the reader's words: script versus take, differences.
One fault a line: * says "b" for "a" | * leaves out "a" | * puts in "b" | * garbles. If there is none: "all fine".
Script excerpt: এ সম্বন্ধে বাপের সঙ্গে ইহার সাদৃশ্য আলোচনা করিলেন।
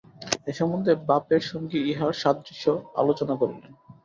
all fine